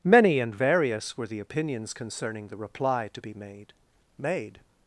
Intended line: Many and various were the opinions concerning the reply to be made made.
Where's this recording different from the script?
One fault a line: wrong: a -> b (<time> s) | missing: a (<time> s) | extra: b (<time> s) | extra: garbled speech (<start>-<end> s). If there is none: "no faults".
no faults